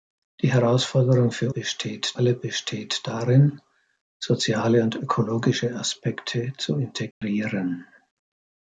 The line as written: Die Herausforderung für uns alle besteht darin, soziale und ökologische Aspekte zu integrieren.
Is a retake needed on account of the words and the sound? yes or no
yes